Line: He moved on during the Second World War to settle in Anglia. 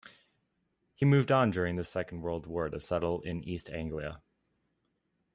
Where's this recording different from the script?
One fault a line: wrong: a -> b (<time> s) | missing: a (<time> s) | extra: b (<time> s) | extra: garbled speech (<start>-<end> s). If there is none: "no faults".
extra: East (3.4 s)